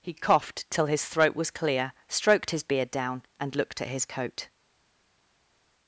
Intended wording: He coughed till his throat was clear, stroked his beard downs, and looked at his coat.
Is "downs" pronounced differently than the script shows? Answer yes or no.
yes